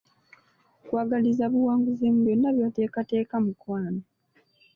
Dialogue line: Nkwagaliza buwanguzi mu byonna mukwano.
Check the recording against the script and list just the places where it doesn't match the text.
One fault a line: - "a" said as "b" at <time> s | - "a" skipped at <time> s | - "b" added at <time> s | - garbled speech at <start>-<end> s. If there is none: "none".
- "by'oteekateeka" added at 2.6 s